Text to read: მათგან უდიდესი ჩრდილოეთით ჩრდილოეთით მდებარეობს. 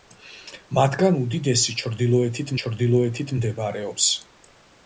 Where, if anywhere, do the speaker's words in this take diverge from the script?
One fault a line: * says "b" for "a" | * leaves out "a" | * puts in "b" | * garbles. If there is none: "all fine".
all fine